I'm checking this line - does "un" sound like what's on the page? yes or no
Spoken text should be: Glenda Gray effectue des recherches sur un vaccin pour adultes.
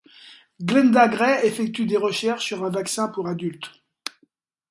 yes